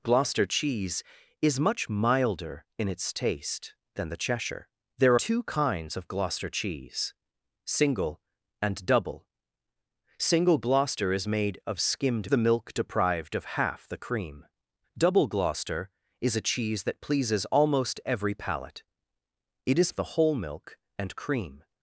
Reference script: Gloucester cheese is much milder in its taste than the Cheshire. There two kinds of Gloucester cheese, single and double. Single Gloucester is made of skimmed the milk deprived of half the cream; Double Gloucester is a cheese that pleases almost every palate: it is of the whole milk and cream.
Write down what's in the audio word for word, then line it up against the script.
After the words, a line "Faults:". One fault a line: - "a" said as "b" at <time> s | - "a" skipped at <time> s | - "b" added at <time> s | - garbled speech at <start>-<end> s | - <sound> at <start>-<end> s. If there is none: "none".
Gloucester cheese is much milder in its taste than the Cheshire. There two kinds of Gloucester cheese, single and double. Single Gloucester is made of skimmed the milk deprived of half the cream; Double Gloucester is a cheese that pleases almost every palate: it is of the whole milk and cream.
Faults:
none